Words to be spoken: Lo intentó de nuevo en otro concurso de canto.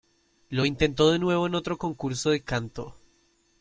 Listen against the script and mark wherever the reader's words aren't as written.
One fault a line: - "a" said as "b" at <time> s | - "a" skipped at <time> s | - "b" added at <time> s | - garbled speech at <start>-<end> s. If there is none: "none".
none